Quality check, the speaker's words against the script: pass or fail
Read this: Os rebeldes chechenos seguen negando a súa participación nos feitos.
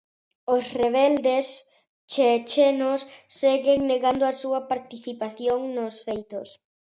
pass